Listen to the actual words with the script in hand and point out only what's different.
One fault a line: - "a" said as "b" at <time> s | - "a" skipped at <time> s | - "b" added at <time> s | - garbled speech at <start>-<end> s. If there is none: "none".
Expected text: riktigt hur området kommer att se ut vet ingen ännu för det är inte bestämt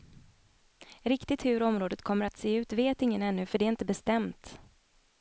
none